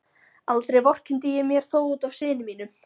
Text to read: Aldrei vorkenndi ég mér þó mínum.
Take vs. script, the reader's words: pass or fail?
fail